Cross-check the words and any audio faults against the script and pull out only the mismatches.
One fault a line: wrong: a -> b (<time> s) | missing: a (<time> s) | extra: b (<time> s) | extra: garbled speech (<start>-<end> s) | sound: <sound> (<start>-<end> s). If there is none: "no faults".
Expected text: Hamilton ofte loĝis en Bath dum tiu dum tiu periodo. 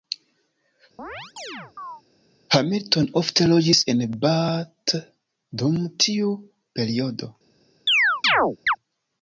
sound: chirp (1.0-2.0 s)
missing: dum tiu (6.3 s)
sound: chirp (7.9-8.8 s)